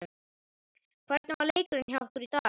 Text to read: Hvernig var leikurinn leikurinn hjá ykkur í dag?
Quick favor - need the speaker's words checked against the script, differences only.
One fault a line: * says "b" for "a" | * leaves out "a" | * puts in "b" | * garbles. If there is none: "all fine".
* leaves out "leikurinn"